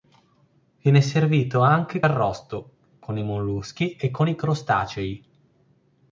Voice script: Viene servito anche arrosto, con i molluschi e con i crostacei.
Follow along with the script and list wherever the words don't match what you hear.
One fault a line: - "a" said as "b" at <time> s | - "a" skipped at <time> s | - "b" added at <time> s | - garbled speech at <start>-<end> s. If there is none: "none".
none